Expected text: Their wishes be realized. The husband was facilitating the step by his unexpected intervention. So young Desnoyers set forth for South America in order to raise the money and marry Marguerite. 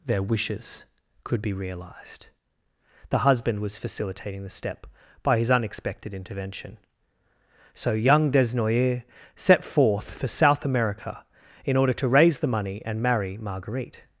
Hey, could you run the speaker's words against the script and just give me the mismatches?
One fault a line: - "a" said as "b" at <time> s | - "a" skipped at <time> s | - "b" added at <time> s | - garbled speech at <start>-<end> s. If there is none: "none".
- "could" added at 1.2 s